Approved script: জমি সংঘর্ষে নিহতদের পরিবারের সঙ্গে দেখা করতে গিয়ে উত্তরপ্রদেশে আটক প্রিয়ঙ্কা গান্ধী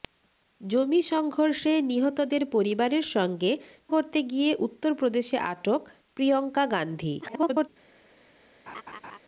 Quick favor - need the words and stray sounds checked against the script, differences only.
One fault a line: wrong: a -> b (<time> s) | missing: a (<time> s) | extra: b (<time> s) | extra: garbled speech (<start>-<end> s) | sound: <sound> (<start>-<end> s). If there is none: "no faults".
missing: দেখা (3.5 s)
extra: garbled speech (7.2-7.7 s)
sound: laugh (8.7-9.2 s)